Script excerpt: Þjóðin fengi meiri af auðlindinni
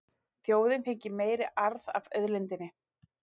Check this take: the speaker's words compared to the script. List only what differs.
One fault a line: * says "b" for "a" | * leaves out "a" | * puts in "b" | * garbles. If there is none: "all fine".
* puts in "arð"